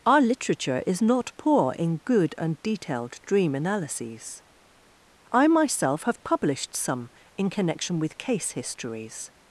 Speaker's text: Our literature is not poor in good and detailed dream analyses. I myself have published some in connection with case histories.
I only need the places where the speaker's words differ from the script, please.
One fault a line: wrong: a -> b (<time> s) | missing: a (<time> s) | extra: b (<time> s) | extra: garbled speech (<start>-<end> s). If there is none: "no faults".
no faults